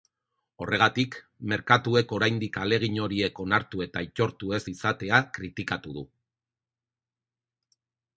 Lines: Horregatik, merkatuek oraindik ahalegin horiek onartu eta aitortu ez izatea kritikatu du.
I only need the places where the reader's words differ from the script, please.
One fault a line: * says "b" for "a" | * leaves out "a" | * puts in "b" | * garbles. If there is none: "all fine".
all fine